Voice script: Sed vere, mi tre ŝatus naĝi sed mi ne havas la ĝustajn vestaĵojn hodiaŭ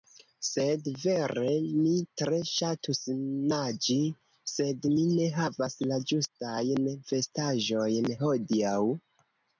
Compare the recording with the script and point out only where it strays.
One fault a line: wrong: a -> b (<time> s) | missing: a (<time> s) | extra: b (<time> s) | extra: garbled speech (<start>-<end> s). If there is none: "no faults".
no faults